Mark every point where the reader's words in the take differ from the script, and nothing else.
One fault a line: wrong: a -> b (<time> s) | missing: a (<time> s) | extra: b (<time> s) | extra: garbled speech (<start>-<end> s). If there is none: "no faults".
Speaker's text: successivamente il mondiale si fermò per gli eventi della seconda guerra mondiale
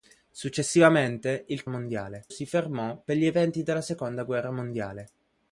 no faults